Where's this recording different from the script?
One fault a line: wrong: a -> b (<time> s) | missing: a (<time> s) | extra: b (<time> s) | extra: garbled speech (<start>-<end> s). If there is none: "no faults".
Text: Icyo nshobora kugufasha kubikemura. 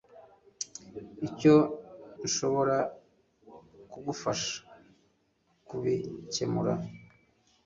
no faults